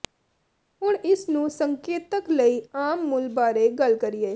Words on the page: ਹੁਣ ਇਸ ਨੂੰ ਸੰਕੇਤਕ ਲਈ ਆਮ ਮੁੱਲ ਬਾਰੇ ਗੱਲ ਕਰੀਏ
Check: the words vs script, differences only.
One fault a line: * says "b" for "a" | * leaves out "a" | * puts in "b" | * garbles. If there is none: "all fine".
all fine